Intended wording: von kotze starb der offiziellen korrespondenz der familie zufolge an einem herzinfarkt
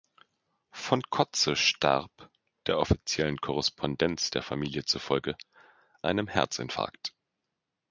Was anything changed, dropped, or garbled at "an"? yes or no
yes